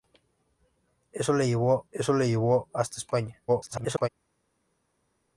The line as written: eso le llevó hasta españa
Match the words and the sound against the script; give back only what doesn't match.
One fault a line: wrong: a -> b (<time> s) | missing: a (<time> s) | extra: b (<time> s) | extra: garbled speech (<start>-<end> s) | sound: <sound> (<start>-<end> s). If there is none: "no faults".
extra: eso le llevó (1.9 s)
extra: garbled speech (3.5-4.1 s)